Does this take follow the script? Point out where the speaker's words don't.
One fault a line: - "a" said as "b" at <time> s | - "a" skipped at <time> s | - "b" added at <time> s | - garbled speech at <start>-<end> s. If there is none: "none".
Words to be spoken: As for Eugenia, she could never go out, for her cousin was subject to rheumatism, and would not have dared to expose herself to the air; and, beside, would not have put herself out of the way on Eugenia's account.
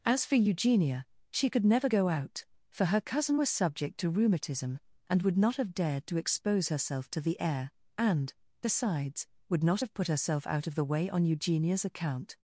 - "beside" said as "besides" at 8.6 s